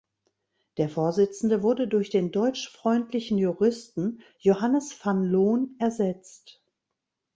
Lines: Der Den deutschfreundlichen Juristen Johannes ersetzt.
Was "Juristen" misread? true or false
false